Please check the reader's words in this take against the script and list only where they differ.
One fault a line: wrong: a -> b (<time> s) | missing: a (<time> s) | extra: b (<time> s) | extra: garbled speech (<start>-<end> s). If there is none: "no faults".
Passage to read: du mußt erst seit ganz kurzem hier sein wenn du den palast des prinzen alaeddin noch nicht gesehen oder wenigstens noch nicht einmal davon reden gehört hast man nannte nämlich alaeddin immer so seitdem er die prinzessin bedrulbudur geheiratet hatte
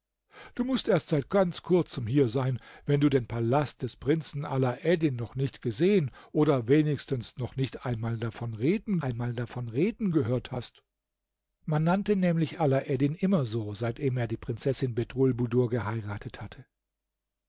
extra: einmal davon reden (9.0 s)